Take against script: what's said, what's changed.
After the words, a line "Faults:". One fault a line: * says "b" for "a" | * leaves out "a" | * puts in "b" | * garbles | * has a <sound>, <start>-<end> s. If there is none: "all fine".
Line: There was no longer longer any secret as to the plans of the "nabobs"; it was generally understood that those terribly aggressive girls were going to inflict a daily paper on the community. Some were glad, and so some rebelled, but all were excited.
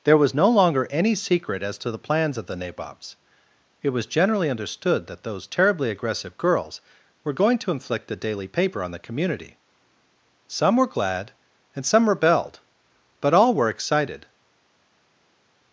There was no longer any secret as to the plans of the "nabobs"; it was generally understood that those terribly aggressive girls were going to inflict a daily paper on the community. Some were glad, and some rebelled, but all were excited.
Faults:
* leaves out "longer"
* leaves out "so"